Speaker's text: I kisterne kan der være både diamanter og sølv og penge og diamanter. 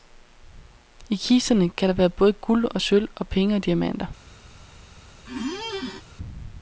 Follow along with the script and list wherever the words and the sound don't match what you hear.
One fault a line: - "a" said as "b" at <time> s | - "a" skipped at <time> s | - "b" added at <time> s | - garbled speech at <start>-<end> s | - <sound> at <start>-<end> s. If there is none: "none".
- "diamanter" said as "guld" at 2.3 s
- squeak at 5.3-6.0 s